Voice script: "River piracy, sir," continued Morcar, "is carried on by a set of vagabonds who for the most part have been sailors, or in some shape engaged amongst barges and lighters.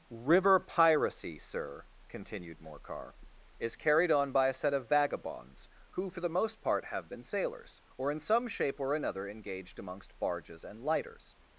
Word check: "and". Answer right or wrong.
right